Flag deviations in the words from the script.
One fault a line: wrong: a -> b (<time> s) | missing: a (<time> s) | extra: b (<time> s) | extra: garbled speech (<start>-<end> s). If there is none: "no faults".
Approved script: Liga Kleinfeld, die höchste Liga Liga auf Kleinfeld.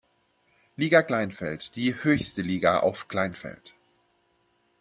missing: Liga (2.8 s)